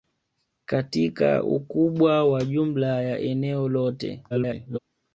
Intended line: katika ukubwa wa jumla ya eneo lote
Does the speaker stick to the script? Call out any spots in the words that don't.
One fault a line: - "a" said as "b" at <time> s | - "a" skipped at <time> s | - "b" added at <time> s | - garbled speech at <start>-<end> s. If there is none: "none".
- garbled speech at 4.3-4.8 s